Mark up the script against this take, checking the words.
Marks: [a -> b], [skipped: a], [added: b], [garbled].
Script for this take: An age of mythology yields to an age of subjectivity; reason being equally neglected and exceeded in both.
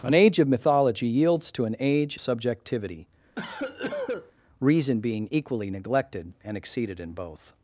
An age of mythology yields to an age [skipped: of] subjectivity; reason being equally neglected and exceeded in both.